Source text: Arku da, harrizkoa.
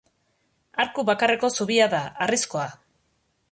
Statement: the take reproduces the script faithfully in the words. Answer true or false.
false